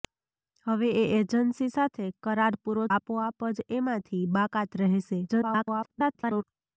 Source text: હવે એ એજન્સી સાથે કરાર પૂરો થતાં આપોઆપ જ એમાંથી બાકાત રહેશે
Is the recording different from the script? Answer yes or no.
yes